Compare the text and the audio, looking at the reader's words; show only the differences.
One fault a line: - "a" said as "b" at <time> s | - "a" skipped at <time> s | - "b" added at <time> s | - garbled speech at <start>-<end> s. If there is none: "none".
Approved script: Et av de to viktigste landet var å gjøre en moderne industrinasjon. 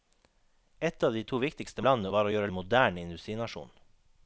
none